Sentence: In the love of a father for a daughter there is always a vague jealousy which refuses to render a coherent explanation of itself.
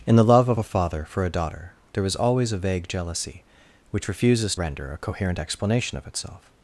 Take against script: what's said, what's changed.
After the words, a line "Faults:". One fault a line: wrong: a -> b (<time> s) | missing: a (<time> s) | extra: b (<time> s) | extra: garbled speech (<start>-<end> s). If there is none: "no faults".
In the love of a father for a daughter there is always a vague jealousy which refuses render a coherent explanation of itself.
Faults:
missing: to (4.5 s)